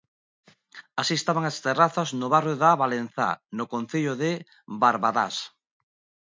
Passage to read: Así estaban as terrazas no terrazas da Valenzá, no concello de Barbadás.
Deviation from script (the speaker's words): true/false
true